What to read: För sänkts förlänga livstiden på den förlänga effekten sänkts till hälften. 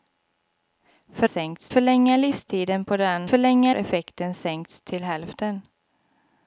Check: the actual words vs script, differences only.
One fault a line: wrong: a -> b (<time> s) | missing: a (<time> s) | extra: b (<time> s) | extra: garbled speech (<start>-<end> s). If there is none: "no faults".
no faults